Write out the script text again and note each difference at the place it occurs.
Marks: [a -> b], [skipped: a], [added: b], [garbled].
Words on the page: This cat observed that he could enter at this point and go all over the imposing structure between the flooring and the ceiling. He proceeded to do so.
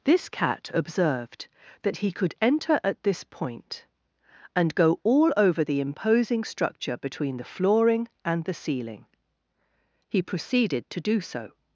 This cat observed that he could enter at this point and go all over the imposing structure between the flooring and the ceiling. He proceeded to do so.